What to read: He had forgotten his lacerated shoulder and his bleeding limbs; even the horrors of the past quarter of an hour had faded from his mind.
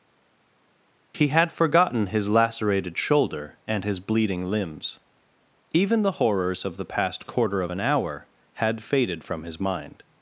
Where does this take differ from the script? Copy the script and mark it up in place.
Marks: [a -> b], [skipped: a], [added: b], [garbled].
He had forgotten his lacerated shoulder and his bleeding limbs; even the horrors of the past quarter of an hour had faded from his mind.